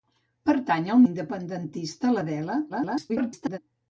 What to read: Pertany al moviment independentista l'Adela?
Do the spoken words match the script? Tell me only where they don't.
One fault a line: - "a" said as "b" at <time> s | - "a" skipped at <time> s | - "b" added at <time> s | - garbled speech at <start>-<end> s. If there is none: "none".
- "moviment" skipped at 1.0 s
- garbled speech at 2.7-3.6 s